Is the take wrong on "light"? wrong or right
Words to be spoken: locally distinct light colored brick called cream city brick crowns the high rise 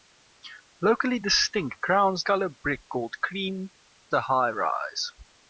wrong